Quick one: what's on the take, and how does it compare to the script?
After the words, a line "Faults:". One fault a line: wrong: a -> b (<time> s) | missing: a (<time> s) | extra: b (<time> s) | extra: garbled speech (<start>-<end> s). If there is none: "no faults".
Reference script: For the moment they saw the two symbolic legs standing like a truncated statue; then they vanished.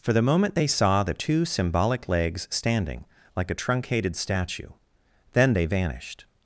For the moment they saw the two symbolic legs standing like a truncated statue; then they vanished.
Faults:
no faults